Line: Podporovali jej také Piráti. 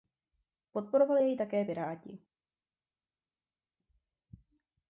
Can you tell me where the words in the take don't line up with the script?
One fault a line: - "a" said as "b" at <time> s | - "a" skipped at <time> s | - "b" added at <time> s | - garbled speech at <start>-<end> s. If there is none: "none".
none